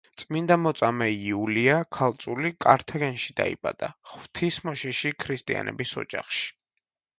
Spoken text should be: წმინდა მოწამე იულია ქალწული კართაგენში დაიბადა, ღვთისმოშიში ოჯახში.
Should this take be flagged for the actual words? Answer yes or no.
yes